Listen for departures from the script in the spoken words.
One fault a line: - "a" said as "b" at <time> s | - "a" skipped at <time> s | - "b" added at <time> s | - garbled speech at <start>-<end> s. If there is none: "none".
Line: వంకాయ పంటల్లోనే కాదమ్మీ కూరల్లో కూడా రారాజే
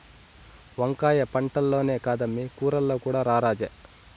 none